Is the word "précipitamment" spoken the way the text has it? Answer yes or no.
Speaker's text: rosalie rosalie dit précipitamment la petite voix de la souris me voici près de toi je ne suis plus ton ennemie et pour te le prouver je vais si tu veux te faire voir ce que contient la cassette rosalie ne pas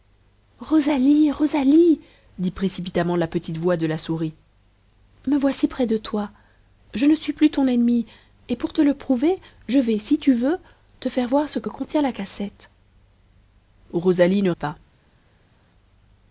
yes